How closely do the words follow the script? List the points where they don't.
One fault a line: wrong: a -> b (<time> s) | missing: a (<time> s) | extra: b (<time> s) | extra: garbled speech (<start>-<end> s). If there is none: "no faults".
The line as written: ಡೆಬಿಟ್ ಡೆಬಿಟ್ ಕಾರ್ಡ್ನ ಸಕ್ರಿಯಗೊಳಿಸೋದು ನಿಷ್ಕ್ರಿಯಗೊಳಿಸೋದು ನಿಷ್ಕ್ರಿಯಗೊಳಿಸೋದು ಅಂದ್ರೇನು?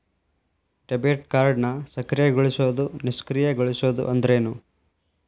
missing: ಡೆಬಿಟ್ (1.3 s)
missing: ನಿಷ್ಕ್ರಿಯಗೊಳಿಸೋದು (4.0 s)